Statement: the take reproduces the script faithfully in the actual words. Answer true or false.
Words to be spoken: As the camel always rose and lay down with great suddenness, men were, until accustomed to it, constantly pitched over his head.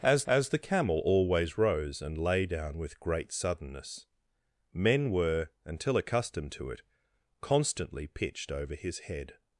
false